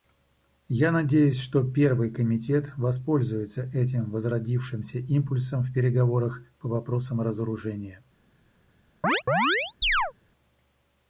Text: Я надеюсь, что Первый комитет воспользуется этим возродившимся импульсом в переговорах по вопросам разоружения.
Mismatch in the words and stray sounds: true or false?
true